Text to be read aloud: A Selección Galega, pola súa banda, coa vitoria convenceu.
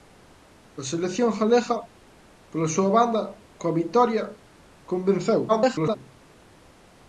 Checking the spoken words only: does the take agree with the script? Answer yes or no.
no